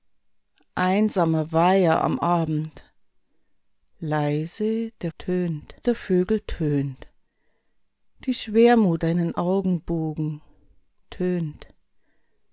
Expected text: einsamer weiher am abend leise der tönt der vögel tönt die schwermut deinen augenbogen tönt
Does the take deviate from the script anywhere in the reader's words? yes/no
no